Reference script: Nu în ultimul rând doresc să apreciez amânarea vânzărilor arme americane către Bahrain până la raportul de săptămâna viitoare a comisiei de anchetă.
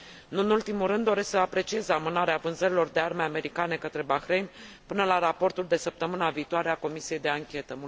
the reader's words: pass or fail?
fail